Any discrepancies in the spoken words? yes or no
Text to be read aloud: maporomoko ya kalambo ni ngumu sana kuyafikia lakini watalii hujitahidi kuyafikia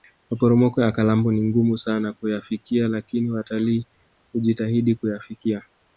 no